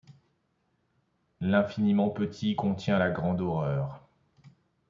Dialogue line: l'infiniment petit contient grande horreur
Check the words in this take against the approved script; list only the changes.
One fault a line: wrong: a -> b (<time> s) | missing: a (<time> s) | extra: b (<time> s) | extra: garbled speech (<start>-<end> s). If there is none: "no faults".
extra: la (3.0 s)